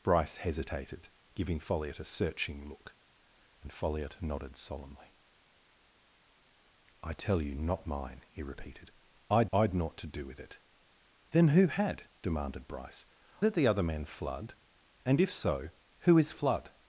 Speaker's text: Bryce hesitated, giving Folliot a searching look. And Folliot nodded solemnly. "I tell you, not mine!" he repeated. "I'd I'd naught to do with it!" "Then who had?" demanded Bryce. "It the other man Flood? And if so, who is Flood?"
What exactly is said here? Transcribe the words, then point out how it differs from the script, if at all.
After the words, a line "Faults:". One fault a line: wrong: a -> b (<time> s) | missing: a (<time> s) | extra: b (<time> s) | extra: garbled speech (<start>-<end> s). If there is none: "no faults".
Bryce hesitated, giving Folliot a searching look. And Folliot nodded solemnly. "I tell you, not mine!" he repeated. "I'd I'd naught to do with it!" "Then who had?" demanded Bryce. "It the other man Flood? And if so, who is Flood?"
Faults:
no faults